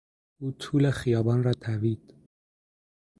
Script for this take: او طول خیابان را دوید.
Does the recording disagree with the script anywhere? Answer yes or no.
no